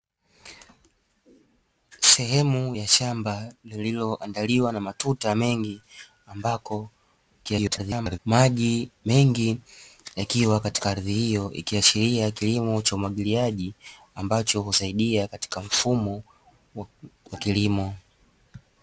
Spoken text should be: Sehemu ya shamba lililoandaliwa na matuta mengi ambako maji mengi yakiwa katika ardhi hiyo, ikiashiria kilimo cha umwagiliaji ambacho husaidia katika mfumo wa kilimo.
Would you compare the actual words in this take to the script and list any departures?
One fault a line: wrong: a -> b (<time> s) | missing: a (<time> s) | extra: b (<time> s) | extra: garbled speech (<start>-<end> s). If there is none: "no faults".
extra: garbled speech (7.4-8.2 s)